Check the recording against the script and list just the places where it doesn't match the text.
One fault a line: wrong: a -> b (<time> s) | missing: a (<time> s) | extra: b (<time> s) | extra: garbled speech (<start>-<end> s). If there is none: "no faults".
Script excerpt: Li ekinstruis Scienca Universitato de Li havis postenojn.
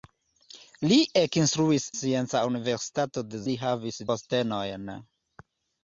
no faults